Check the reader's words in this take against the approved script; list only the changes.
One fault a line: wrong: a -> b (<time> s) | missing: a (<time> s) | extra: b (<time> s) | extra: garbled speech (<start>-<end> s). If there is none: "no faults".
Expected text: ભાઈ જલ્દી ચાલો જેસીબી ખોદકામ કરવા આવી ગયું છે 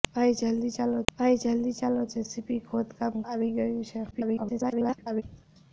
extra: ભાઈ જલ્દી ચાલો (1.1 s)
missing: કરવા (3.2 s)
extra: garbled speech (4.1-5.2 s)